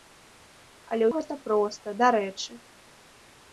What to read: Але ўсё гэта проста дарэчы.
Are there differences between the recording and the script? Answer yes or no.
yes